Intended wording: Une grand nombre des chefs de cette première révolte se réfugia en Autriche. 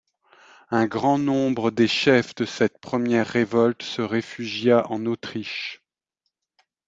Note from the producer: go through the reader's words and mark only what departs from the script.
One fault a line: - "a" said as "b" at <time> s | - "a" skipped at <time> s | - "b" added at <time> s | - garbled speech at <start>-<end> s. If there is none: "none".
- "Une" said as "Un" at 0.7 s